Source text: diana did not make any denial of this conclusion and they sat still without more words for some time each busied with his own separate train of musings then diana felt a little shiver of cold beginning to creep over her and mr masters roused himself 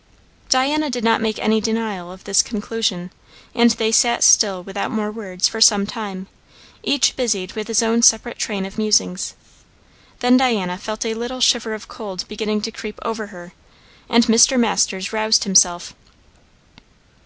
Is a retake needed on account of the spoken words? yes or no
no